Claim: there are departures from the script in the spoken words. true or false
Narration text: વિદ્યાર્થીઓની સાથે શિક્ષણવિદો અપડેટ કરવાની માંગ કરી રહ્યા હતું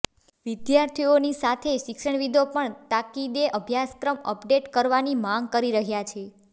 true